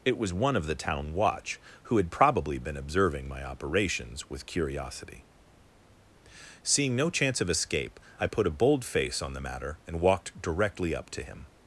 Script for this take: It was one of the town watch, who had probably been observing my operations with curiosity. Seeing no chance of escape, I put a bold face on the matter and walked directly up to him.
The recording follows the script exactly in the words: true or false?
true